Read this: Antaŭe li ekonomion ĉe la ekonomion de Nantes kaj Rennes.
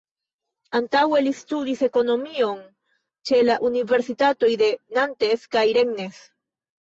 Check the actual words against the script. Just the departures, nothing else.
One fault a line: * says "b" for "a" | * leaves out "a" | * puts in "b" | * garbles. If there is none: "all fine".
* puts in "studis"
* says "universitatoj" for "ekonomion"